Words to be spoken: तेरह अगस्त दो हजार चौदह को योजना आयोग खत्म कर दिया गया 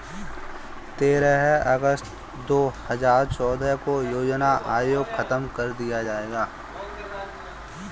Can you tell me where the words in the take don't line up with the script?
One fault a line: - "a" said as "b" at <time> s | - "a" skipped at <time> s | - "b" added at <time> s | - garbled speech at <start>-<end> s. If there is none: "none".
none